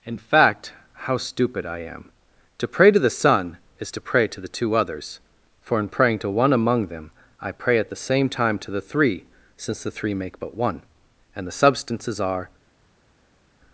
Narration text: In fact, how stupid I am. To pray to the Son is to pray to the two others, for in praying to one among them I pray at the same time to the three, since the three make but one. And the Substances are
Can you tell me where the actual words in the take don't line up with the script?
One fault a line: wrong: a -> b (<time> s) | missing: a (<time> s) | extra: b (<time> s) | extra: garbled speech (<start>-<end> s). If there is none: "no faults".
no faults